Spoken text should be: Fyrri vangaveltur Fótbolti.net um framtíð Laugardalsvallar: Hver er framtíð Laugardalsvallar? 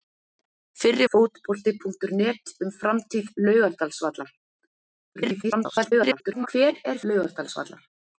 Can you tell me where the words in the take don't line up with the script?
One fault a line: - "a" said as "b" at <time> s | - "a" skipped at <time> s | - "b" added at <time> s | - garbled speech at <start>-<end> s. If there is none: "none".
- "vangaveltur" skipped at 1.1 s
- garbled speech at 5.2-6.5 s
- "framtíð" skipped at 7.0 s